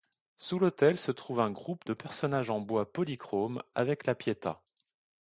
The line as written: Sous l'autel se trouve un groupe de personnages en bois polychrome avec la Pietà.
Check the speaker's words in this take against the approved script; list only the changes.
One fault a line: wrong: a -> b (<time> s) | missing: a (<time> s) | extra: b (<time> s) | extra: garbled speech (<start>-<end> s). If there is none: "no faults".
no faults